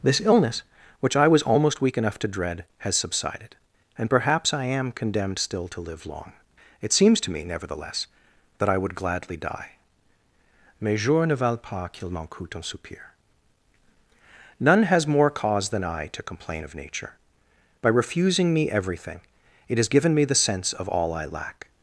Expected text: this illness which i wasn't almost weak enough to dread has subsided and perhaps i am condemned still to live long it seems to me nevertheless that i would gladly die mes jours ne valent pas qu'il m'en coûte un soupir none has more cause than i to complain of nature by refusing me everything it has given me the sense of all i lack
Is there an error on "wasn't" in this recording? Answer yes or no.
yes